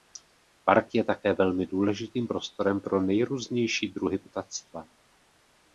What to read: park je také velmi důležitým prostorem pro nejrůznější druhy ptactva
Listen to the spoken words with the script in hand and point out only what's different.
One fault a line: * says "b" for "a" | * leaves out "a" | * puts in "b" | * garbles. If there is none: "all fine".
all fine